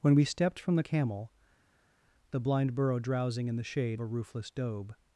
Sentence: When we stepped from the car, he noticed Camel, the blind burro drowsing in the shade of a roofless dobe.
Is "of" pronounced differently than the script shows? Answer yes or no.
yes